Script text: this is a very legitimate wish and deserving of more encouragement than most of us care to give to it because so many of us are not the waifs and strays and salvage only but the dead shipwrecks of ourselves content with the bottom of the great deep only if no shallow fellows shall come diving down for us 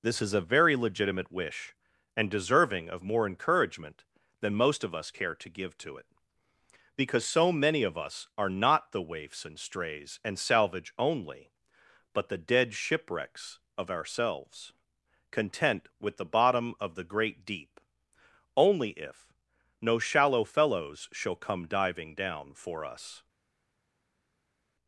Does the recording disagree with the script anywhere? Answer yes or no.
no